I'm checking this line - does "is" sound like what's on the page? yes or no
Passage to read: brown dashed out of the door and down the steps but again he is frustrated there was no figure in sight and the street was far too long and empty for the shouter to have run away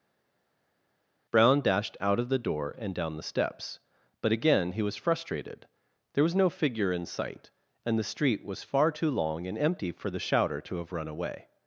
no